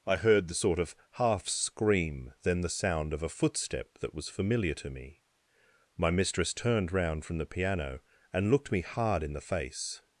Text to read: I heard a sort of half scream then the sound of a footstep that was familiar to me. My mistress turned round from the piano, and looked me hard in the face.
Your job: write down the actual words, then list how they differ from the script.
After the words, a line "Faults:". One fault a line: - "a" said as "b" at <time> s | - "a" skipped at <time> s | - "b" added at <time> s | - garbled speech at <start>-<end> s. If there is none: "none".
I heard the sort of half scream then the sound of a footstep that was familiar to me. My mistress turned round from the piano, and looked me hard in the face.
Faults:
- "a" said as "the" at 0.5 s